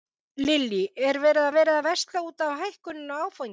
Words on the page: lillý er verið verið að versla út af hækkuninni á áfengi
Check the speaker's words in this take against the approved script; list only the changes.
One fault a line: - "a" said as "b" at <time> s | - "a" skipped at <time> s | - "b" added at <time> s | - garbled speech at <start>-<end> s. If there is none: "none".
none